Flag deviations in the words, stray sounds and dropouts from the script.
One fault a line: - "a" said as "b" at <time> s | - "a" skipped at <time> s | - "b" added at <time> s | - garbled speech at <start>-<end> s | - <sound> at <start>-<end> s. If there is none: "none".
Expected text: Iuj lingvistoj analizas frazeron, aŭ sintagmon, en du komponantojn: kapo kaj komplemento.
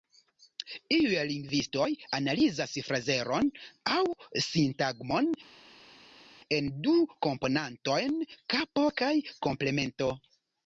none